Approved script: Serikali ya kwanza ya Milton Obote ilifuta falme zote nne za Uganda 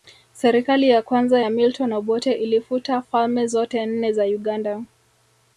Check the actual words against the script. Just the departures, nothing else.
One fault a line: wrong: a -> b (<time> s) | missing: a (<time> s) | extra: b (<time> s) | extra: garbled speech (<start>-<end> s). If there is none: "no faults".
no faults